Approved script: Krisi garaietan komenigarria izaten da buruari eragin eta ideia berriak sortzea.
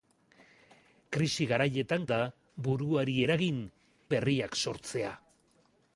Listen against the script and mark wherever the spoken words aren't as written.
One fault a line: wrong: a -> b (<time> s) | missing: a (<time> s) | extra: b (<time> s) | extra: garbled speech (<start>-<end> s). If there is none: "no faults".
missing: komenigarria izaten (2.1 s)
missing: eta ideia (3.6 s)